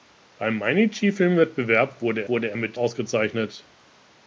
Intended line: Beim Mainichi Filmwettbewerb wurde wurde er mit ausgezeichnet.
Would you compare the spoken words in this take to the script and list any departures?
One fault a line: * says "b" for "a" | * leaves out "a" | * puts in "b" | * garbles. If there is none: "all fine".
all fine